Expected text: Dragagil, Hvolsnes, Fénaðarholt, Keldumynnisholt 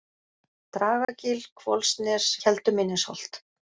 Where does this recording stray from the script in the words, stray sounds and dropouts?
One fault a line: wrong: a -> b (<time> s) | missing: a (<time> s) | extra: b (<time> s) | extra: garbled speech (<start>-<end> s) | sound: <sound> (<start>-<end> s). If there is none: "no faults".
sound: dropout (1.0-1.1 s)
missing: Fénaðarholt (2.3 s)